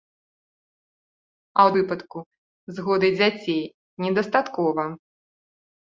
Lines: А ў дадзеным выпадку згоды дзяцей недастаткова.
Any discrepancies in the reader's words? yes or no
yes